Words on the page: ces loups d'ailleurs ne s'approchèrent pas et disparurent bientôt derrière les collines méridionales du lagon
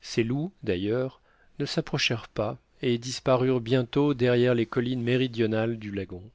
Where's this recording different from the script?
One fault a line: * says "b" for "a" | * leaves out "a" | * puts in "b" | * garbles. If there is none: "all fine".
all fine